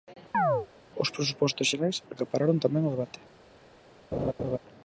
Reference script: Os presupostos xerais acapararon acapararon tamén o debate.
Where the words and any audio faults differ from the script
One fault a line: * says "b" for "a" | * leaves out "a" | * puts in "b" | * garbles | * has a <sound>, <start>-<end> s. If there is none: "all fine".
* has a chirp, 0.3-0.7 s
* leaves out "acapararon"
* has a laugh, 4.1-4.6 s